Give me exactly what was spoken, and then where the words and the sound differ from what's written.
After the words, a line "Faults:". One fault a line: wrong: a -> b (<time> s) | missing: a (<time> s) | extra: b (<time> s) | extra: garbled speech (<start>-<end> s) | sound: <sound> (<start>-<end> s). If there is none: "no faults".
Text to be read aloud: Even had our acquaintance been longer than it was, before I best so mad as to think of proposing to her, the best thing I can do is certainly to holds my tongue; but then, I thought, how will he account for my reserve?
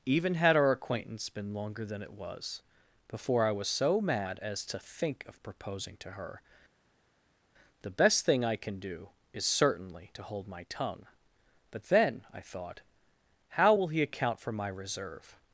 Even had our acquaintance been longer than it was, before I was so mad as to think of proposing to her, the best thing I can do is certainly to hold my tongue; but then, I thought, how will he account for my reserve?
Faults:
wrong: best -> was (3.5 s)
wrong: holds -> hold (10.2 s)